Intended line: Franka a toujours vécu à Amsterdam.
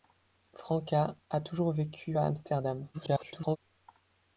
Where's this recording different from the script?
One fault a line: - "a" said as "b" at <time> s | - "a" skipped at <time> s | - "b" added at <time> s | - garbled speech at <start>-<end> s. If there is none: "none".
- garbled speech at 2.9-3.6 s